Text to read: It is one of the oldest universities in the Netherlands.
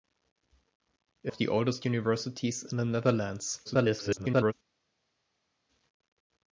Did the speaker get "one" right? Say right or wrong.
wrong